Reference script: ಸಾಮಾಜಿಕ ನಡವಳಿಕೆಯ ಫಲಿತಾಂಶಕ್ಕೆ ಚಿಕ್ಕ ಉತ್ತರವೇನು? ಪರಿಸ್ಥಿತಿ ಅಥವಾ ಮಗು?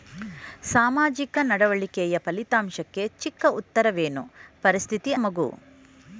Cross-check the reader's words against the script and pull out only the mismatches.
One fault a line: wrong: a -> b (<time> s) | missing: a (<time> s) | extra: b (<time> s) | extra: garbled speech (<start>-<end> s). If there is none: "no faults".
missing: ಅಥವಾ (5.1 s)